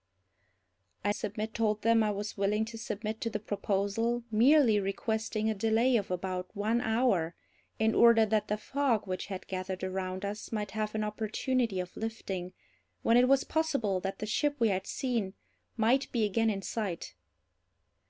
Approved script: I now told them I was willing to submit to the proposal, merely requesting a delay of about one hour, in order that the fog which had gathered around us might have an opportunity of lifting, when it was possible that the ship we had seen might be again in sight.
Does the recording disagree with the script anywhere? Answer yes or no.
yes